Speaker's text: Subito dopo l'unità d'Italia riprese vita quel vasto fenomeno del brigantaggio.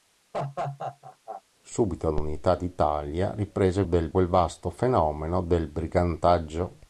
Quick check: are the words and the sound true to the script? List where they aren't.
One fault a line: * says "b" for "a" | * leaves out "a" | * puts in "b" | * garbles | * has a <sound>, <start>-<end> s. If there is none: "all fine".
* has a laugh, 0.3-1.4 s
* leaves out "dopo"
* says "del" for "vita"